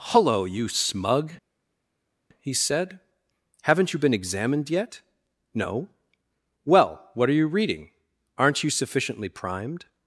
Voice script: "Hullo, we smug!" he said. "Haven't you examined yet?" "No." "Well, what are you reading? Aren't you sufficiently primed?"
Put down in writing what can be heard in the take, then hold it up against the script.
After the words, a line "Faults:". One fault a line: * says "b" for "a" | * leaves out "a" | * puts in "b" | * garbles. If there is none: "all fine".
"Hullo, you smug!" he said. "Haven't you been examined yet?" "No." "Well, what are you reading? Aren't you sufficiently primed?"
Faults:
* says "you" for "we"
* puts in "been"